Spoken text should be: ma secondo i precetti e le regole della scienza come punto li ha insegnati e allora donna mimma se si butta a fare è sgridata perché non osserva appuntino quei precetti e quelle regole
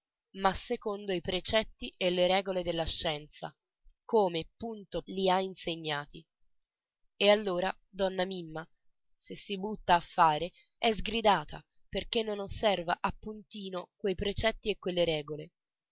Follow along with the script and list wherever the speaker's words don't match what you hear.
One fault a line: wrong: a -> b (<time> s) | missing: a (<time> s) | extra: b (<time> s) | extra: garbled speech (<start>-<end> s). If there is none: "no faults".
no faults